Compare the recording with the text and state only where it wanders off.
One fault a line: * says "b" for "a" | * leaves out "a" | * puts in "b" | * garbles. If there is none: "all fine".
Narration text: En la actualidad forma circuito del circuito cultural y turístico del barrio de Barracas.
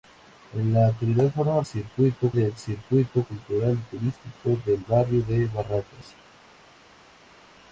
all fine